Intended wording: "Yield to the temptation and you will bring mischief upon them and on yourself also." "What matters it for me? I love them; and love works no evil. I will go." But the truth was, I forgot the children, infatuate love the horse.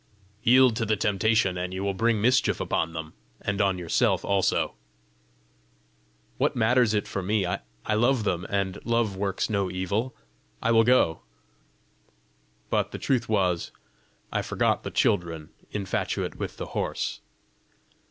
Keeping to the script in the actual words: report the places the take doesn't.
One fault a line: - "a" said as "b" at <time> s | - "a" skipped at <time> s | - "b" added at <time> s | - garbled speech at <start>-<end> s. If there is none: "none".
- "love" said as "with" at 16.3 s